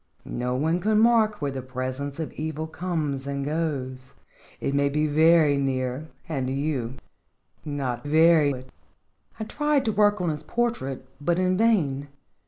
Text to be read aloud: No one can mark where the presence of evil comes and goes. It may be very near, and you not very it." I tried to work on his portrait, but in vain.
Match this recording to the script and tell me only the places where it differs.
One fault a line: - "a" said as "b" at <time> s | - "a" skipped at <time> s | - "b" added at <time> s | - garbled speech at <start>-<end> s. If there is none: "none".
none